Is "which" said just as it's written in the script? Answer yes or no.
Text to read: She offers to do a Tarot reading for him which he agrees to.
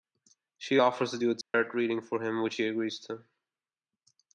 yes